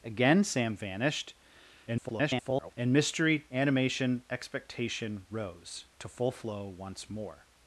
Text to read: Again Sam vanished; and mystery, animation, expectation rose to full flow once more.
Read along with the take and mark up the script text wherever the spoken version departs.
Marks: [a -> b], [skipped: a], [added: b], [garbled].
Again Sam vanished; [garbled] and mystery, animation, expectation rose to full flow once more.